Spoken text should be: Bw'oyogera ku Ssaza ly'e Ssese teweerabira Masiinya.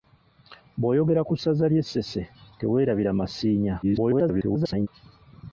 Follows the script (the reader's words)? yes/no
no